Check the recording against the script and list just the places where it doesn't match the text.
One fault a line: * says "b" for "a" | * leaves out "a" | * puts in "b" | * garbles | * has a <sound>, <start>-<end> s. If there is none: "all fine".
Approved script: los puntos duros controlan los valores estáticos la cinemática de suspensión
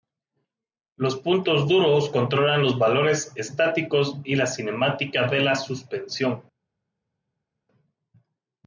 * puts in "y"
* puts in "la"